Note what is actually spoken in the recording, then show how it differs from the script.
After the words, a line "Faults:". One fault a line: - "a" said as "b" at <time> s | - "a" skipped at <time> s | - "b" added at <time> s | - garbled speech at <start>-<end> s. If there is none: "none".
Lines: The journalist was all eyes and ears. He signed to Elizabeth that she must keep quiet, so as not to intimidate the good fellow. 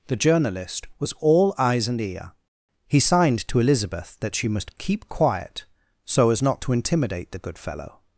The journalist was all eyes and ear. He signed to Elizabeth that she must keep quiet, so as not to intimidate the good fellow.
Faults:
- "ears" said as "ear" at 2.0 s